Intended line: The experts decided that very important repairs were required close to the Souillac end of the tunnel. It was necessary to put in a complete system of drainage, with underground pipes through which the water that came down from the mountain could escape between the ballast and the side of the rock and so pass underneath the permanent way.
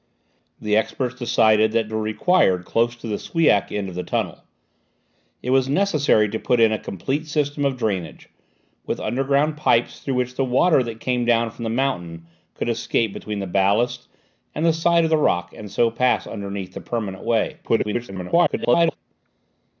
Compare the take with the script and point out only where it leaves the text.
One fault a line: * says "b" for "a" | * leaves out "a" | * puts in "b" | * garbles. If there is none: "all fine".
* leaves out "very important repairs"
* garbles